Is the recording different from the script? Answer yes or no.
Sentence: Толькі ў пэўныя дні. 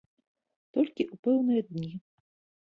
no